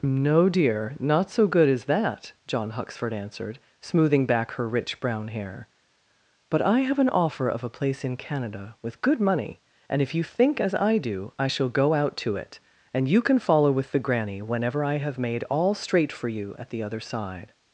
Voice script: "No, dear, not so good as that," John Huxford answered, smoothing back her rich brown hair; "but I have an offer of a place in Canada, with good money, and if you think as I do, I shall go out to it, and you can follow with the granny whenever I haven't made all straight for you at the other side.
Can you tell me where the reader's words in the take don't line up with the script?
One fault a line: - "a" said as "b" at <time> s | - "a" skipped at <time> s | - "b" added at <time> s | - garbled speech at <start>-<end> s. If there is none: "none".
- "haven't" said as "have" at 15.0 s